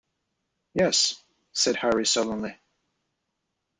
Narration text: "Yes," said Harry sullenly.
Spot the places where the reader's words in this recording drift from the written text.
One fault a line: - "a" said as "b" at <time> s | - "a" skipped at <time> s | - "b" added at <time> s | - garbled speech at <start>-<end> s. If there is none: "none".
none